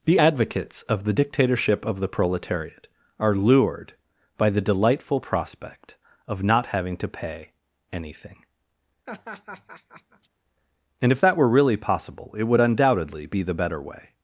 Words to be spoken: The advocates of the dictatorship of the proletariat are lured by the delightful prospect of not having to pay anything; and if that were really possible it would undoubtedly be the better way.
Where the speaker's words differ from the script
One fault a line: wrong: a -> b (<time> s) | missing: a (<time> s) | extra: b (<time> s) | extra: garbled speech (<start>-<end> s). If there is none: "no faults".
no faults